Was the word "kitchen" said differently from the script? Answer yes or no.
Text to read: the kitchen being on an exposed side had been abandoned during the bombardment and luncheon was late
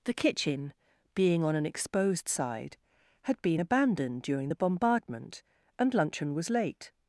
no